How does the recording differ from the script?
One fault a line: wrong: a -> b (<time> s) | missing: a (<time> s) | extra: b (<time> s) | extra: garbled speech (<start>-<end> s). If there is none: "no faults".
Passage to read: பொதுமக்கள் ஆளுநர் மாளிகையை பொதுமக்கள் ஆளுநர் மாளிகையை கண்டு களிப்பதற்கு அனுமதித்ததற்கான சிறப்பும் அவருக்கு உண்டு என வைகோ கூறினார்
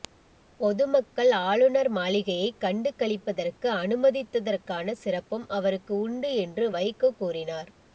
missing: பொதுமக்கள் ஆளுநர் மாளிகையை (2.5 s)
wrong: என -> என்று (6.4 s)